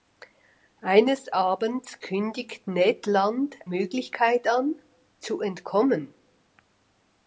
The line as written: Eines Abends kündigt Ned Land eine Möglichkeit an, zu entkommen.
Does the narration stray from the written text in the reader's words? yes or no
yes